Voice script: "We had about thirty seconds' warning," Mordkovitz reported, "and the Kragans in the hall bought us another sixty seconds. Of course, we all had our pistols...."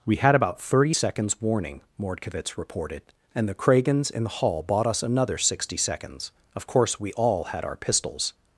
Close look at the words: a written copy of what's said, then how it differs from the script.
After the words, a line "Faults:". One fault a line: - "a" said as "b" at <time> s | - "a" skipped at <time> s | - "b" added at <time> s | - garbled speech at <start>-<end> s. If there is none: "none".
"We had about thirty seconds' warning," Mordkovitz reported, "and the Kragans in the hall bought us another sixty seconds. Of course, we all had our pistols...."
Faults:
none